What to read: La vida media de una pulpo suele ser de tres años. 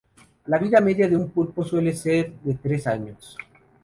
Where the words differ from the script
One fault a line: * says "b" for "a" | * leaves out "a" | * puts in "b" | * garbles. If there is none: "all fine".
* says "un" for "una"